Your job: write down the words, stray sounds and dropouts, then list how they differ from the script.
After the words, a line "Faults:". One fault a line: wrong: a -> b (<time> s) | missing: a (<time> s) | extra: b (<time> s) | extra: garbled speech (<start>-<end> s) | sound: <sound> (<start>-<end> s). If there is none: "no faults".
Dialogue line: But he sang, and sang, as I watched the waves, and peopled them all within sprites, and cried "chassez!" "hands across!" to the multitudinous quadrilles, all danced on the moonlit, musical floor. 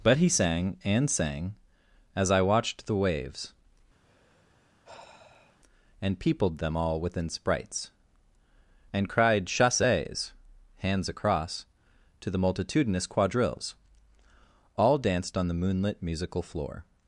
But he sang, and sang, as I watched the waves, and peopled them all within sprites, and cried "chassez!" "hands across!" to the multitudinous quadrilles, all danced on the moonlit, musical floor.
Faults:
sound: sigh (4.0-5.6 s)